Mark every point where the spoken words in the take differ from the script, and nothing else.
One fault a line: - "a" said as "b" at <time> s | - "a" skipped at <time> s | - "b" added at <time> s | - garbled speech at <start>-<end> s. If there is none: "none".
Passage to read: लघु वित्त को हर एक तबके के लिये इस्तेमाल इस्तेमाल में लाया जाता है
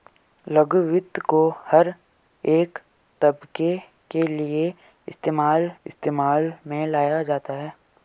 none